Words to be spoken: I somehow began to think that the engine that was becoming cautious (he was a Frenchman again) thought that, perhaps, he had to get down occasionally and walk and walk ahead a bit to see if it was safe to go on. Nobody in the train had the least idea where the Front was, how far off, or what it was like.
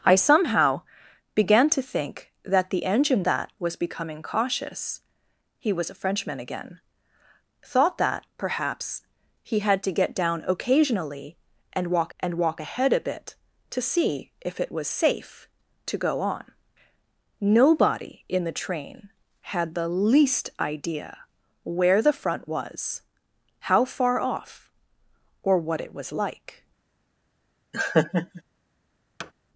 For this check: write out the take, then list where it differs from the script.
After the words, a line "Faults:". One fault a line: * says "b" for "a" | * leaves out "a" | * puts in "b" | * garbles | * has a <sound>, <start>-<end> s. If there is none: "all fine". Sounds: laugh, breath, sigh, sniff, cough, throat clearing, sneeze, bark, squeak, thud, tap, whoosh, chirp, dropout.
I somehow began to think that the engine that was becoming cautious (he was a Frenchman again) thought that, perhaps, he had to get down occasionally and walk and walk ahead a bit to see if it was safe to go on. Nobody in the train had the least idea where the Front was, how far off, or what it was like.
Faults:
* has a laugh, 27.7-28.4 s
* has a thud, 29.2-29.3 s